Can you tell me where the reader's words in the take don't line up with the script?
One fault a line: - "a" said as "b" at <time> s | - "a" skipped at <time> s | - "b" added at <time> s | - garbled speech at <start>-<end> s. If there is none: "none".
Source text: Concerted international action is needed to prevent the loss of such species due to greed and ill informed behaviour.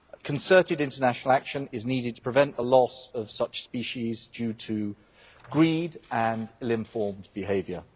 none